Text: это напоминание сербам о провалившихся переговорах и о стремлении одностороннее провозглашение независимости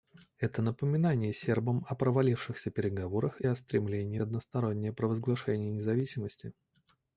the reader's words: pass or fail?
pass